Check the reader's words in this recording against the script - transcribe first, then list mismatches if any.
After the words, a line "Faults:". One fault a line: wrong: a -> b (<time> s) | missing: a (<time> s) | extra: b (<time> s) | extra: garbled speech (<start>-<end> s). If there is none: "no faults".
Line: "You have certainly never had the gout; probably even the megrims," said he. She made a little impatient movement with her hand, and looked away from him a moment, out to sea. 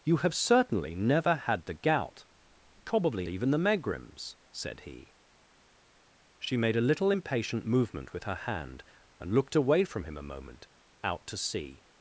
"You have certainly never had the gout; probably even the megrims," said he. She made a little impatient movement with her hand, and looked away from him a moment, out to sea.
Faults:
no faults